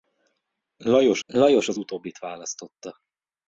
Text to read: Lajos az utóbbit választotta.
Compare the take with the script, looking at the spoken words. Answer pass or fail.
fail